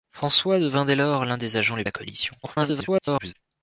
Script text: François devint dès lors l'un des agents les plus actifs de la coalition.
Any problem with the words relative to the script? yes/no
yes